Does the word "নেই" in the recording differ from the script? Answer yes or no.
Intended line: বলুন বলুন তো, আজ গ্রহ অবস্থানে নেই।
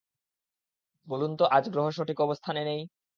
no